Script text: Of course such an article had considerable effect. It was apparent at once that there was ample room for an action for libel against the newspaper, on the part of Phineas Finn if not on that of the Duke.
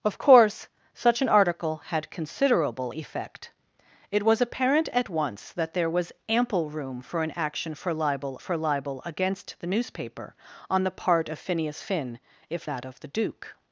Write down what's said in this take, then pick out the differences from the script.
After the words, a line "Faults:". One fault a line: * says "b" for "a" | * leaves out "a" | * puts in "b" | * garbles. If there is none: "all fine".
Of course such an article had considerable effect. It was apparent at once that there was ample room for an action for libel for libel against the newspaper, on the part of Phineas Finn if that of the Duke.
Faults:
* puts in "for libel"
* leaves out "not on"